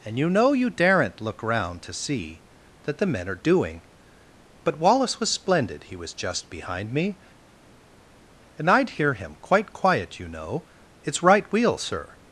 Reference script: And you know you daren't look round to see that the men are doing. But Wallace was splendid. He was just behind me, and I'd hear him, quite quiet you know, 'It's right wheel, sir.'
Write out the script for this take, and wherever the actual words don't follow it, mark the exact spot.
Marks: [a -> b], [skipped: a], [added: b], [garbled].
And you know you daren't look round to see that the men are doing. But Wallace was splendid. He was just behind me, and I'd hear him, quite quiet you know, 'It's right wheel, sir.'